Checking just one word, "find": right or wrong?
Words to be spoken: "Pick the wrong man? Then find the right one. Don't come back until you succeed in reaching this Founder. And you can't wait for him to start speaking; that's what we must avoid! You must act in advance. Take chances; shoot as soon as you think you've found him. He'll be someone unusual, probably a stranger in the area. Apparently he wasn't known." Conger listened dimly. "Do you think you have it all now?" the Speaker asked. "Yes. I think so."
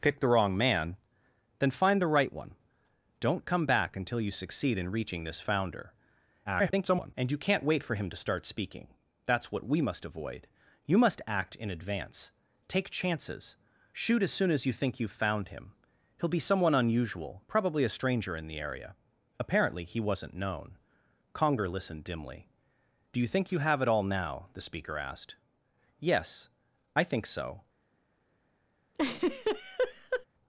right